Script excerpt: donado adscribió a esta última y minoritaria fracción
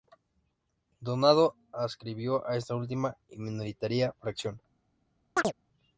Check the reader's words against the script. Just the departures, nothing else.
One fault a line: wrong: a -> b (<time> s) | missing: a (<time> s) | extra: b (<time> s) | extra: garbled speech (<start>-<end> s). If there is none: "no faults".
no faults